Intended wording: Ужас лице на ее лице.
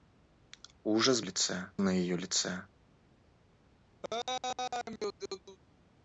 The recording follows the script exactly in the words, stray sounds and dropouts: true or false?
false